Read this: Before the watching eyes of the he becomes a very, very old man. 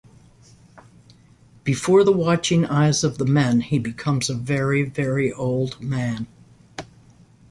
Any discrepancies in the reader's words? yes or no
yes